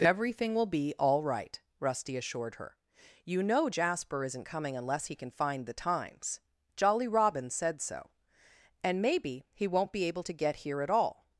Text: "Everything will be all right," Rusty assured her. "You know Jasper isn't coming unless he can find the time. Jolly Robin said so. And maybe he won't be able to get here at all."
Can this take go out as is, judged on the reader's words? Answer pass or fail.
fail